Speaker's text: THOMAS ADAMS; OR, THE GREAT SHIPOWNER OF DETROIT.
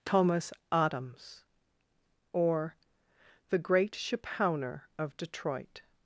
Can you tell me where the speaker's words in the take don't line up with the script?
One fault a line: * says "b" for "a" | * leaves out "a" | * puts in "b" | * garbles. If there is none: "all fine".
all fine